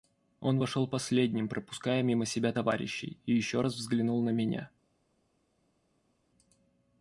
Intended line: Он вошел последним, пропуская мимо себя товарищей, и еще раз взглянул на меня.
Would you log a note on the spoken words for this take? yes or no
no